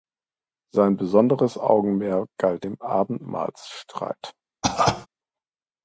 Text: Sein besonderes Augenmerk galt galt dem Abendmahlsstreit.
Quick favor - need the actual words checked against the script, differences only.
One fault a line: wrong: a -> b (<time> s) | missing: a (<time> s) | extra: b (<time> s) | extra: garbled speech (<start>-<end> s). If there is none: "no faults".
missing: galt (2.6 s)